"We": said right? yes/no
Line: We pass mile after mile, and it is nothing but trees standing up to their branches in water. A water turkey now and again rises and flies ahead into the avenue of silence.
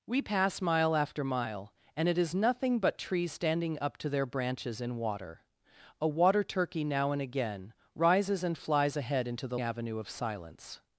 yes